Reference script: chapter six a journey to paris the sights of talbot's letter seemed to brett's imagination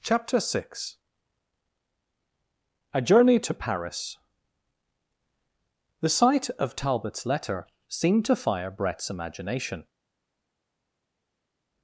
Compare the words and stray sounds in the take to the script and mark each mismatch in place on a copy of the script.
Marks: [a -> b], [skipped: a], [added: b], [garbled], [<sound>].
chapter six a journey to paris the [sights -> sight] of talbot's letter seemed to [added: fire] brett's imagination